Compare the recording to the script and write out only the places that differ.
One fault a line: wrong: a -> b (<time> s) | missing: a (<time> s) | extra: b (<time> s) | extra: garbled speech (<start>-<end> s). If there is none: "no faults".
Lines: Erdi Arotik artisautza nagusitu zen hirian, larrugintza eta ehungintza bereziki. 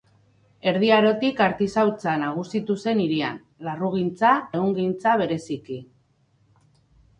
missing: eta (4.3 s)